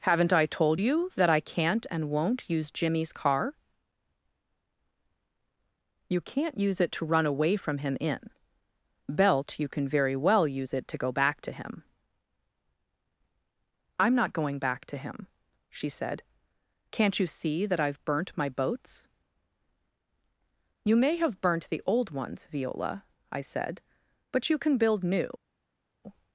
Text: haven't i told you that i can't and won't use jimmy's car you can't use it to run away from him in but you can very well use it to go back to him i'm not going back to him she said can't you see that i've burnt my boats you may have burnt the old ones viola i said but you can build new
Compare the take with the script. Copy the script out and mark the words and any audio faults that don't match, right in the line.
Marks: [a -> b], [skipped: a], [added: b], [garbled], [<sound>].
haven't i told you that i can't and won't use jimmy's car you can't use it to run away from him in [but -> belt] you can very well use it to go back to him i'm not going back to him she said can't you see that i've burnt my boats you may have burnt the old ones viola i said but you can build new